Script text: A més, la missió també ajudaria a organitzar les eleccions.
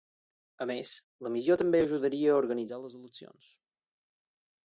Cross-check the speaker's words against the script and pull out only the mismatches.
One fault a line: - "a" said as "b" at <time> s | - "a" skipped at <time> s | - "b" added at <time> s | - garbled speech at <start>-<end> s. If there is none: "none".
none